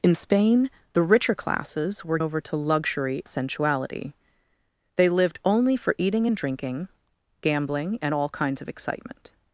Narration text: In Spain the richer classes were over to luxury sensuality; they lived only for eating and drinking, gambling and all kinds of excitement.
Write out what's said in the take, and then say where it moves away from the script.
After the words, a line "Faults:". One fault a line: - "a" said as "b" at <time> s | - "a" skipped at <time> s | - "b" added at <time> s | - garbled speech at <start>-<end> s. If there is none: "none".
In Spain the richer classes were over to luxury sensuality; they lived only for eating and drinking, gambling and all kinds of excitement.
Faults:
none